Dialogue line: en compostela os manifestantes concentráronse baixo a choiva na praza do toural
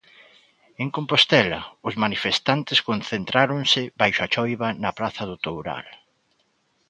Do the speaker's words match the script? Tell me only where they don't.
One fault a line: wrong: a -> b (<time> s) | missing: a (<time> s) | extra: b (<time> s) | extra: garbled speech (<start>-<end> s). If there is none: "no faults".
no faults